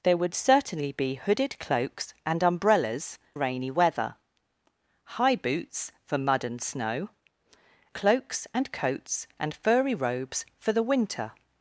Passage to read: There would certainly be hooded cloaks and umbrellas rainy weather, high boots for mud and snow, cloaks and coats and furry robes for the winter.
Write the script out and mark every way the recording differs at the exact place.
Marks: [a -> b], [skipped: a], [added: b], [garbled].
There would certainly be hooded cloaks and umbrellas rainy weather, high boots for mud and snow, cloaks and coats and furry robes for the winter.